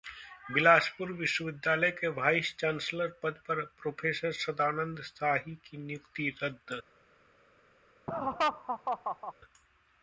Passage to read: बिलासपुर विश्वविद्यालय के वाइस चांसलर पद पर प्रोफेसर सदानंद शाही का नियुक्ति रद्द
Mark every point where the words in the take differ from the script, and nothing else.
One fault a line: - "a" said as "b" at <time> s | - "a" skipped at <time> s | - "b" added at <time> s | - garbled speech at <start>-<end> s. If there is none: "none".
- "का" said as "की" at 5.7 s